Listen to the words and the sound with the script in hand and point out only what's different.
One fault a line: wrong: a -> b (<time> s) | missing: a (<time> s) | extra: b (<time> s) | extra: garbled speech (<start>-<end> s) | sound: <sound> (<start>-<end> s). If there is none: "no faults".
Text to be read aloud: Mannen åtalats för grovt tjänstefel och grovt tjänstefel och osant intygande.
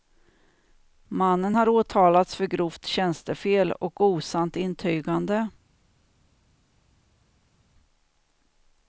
extra: har (1.5 s)
missing: grovt tjänstefel och (4.0 s)